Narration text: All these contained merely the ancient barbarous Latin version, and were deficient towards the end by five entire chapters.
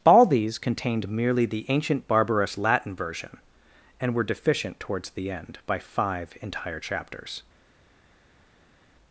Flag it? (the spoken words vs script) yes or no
no